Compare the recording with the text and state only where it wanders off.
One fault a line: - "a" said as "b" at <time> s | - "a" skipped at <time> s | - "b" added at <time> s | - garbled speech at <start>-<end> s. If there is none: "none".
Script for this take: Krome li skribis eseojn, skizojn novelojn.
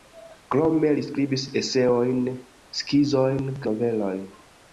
none